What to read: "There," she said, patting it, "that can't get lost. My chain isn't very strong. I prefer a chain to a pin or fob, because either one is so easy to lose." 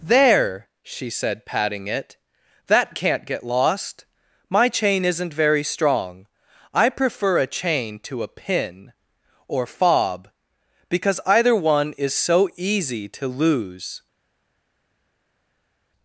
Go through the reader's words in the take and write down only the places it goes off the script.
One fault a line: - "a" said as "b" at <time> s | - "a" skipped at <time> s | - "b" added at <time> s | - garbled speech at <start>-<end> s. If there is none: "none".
none